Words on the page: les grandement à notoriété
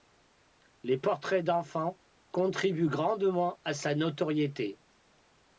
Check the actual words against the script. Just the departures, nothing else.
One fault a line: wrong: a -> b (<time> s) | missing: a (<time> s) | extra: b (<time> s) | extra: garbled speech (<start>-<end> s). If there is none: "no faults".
extra: portraits d'enfants contribuent (1.0 s)
extra: sa (3.7 s)